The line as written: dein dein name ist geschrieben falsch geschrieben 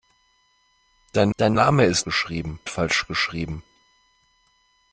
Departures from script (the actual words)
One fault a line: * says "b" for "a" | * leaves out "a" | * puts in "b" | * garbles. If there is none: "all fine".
all fine